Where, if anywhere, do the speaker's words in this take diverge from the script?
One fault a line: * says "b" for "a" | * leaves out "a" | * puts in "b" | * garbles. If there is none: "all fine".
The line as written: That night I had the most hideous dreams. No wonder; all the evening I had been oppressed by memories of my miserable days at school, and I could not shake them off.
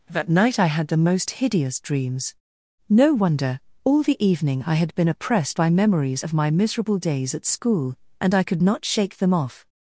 all fine